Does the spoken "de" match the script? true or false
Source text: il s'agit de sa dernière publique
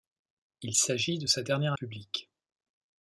true